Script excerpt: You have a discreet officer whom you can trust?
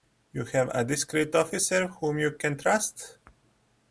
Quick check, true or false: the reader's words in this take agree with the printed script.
true